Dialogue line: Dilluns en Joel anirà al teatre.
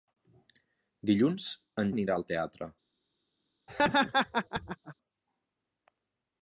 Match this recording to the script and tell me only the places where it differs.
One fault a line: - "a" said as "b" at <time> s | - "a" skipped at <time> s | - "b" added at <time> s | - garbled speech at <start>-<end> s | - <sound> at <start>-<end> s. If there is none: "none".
- "Joel" skipped at 1.9 s
- laugh at 3.7-4.9 s